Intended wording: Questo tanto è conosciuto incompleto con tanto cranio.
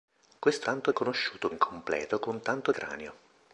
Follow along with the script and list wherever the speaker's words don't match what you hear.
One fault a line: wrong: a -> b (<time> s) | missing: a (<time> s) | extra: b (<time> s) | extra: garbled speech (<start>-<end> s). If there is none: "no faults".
no faults